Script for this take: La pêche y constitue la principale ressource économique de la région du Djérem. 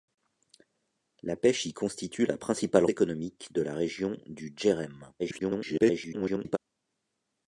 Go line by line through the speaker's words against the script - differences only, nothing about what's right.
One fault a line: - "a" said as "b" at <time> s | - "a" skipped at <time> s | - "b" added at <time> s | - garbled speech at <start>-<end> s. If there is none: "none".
- "ressource" skipped at 2.9 s
- garbled speech at 5.2-6.6 s